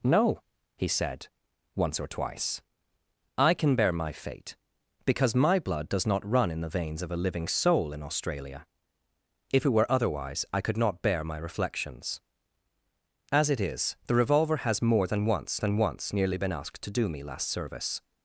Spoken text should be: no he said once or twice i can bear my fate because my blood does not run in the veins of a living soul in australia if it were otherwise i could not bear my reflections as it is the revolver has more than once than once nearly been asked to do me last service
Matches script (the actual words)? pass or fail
pass